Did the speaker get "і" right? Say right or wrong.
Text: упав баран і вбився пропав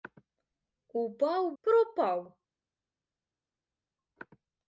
wrong